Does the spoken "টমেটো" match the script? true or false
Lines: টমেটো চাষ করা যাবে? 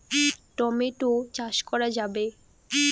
true